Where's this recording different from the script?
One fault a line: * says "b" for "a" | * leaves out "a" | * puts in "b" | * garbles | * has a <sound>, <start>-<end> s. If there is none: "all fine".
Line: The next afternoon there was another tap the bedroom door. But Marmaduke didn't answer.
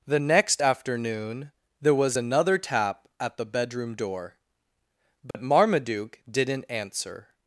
* puts in "at"
* has a dropout, 5.3-5.3 s